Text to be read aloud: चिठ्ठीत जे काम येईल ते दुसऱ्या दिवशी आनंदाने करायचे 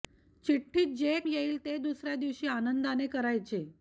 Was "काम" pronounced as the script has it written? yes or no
no